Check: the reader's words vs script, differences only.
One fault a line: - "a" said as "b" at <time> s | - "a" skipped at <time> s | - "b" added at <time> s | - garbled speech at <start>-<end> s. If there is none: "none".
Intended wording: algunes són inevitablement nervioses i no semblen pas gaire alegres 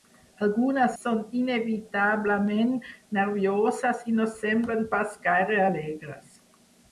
none